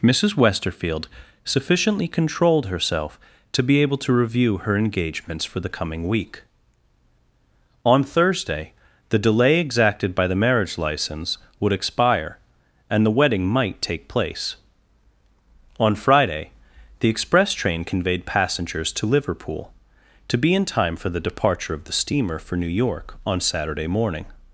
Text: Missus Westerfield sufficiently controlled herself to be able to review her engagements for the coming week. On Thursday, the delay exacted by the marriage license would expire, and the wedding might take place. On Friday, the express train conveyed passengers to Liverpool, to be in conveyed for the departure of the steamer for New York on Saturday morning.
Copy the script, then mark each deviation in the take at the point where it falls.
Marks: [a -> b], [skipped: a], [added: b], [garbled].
Missus Westerfield sufficiently controlled herself to be able to review her engagements for the coming week. On Thursday, the delay exacted by the marriage license would expire, and the wedding might take place. On Friday, the express train conveyed passengers to Liverpool, to be in [conveyed -> time] for the departure of the steamer for New York on Saturday morning.